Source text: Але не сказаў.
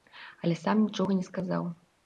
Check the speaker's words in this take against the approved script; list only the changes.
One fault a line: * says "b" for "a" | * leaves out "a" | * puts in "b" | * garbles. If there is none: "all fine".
* puts in "сам нічога"